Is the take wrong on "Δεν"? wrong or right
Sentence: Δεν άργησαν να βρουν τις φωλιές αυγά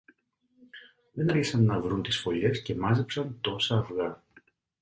right